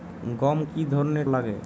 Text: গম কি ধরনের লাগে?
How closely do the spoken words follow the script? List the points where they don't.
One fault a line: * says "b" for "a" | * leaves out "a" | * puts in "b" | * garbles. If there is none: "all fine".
all fine